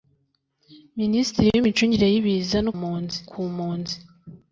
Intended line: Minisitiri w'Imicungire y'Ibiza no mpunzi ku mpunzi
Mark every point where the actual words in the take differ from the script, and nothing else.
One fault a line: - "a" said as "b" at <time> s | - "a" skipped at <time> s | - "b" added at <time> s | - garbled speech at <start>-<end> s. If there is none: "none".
none